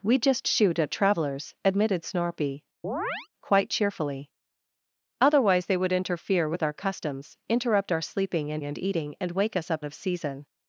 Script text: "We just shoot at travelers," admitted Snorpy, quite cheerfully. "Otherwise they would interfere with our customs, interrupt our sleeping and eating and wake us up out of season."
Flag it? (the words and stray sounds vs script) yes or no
yes